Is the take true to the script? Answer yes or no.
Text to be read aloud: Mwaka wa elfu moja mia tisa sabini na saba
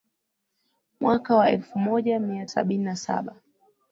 no